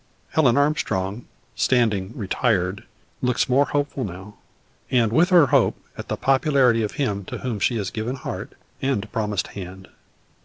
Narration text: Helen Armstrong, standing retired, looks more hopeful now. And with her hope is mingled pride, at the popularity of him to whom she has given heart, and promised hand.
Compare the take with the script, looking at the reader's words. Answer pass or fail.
fail